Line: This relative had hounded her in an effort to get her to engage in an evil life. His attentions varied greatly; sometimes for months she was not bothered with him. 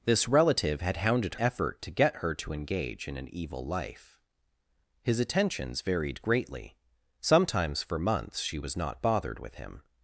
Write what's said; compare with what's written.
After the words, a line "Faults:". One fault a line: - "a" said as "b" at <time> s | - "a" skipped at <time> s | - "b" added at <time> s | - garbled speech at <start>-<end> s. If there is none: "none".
This relative had hounded effort to get her to engage in an evil life. His attentions varied greatly; sometimes for months she was not bothered with him.
Faults:
- "her in an" skipped at 1.4 s